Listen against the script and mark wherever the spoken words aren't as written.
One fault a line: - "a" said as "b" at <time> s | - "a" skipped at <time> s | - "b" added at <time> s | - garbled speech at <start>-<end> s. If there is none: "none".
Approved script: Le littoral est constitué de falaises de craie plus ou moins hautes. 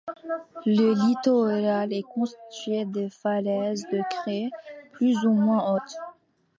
none